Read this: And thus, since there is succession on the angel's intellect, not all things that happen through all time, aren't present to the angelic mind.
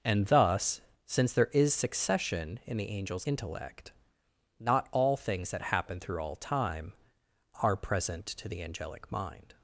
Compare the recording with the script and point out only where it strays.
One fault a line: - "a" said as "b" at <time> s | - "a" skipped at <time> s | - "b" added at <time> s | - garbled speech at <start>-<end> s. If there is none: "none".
- "on" said as "in" at 2.6 s
- "aren't" said as "are" at 7.6 s